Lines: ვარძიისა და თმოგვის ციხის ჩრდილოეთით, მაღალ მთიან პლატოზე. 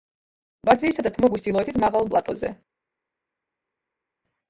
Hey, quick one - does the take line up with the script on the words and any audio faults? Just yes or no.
no